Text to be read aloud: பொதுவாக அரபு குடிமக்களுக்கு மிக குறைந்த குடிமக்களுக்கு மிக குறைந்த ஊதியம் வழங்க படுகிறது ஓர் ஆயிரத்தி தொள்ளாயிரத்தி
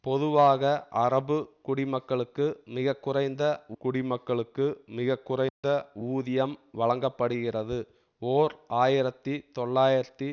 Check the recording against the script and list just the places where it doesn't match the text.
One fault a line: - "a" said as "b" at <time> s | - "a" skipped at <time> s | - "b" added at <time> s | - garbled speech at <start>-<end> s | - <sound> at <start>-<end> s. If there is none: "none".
- dropout at 5.5-5.6 s